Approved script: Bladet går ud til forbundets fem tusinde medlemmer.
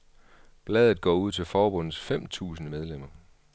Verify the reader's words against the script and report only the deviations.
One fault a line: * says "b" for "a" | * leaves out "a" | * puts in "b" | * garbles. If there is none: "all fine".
all fine